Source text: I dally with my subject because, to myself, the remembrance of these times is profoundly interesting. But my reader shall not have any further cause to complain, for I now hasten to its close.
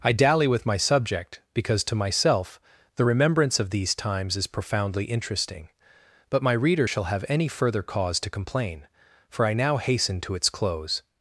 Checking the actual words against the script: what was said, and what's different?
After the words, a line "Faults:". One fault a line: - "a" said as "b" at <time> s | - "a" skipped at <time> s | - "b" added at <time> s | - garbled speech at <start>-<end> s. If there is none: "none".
I dally with my subject because, to myself, the remembrance of these times is profoundly interesting. But my reader shall have any further cause to complain, for I now hasten to its close.
Faults:
- "not" skipped at 7.0 s